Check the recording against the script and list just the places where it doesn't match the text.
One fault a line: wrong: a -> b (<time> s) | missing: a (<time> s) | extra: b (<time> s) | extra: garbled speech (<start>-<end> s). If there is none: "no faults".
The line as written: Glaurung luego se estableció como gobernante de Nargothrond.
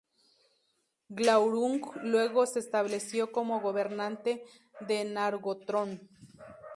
no faults